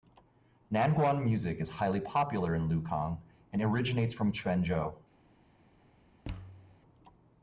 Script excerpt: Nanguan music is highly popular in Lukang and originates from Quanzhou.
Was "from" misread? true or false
false